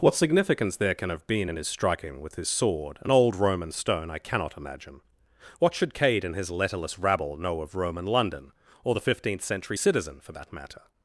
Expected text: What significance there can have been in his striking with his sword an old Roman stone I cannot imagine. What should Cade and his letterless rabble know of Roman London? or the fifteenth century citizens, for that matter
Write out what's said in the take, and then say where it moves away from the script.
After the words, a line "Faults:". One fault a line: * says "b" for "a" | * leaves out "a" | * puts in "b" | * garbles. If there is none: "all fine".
What significance there can have been in his striking with his sword an old Roman stone I cannot imagine. What should Cade and his letterless rabble know of Roman London? or the fifteenth century citizen, for that matter
Faults:
* says "citizen" for "citizens"